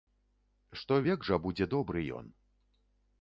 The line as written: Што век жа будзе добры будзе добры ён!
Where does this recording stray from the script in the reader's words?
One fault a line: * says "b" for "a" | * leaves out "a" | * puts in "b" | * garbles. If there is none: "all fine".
* leaves out "будзе добры"